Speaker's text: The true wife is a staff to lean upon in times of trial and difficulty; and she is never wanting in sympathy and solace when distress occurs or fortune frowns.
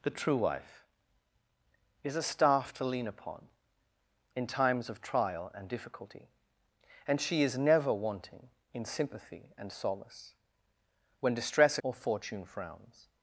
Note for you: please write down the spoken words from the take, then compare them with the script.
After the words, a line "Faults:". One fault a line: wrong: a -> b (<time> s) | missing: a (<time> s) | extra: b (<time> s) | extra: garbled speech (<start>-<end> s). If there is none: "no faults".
The true wife is a staff to lean upon in times of trial and difficulty; and she is never wanting in sympathy and solace when distress or fortune frowns.
Faults:
missing: occurs (11.8 s)